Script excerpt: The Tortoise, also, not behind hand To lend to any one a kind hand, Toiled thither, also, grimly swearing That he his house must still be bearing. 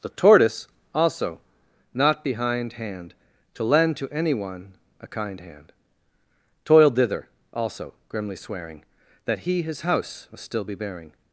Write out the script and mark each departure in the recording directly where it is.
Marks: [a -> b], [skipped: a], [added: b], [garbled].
The Tortoise, also, not behind hand To lend to any one a kind hand, Toiled thither, also, grimly swearing That he his house must still be bearing.